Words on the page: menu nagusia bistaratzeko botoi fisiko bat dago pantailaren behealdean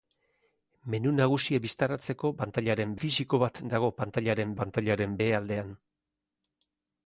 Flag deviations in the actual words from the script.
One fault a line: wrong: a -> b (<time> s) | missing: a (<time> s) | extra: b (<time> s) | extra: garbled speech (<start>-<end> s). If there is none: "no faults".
wrong: botoi -> pantailaren (2.4 s)
extra: pantailaren (4.6 s)